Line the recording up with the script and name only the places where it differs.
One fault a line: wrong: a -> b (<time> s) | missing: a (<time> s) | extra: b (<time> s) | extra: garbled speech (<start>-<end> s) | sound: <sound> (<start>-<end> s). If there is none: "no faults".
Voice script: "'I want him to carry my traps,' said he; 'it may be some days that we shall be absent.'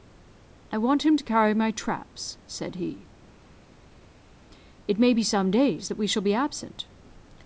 no faults